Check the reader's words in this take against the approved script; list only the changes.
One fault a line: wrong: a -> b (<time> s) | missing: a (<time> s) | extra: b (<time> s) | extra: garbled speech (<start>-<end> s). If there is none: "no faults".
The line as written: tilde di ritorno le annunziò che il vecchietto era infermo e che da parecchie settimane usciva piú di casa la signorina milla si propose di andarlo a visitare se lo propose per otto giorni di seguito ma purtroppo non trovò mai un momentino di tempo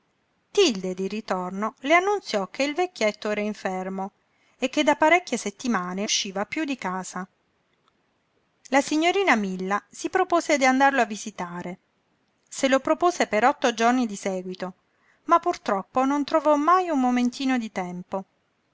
no faults